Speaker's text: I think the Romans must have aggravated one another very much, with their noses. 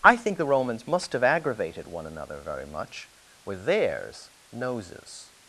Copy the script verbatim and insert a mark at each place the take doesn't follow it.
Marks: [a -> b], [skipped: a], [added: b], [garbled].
I think the Romans must have aggravated one another very much, with [their -> theirs] noses.